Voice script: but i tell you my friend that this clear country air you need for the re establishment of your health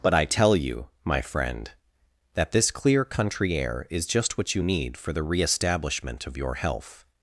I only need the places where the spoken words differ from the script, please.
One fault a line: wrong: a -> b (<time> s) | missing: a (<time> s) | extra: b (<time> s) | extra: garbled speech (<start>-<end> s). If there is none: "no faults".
extra: is just what (3.9 s)